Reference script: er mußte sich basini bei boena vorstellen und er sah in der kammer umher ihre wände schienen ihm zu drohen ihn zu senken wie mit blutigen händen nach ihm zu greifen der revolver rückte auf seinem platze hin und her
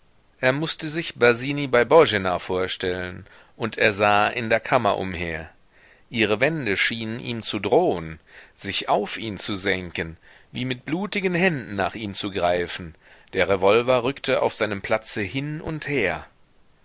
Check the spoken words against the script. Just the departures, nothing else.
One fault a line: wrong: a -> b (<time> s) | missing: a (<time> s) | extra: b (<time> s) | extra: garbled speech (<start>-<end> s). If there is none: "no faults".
extra: sich auf (8.6 s)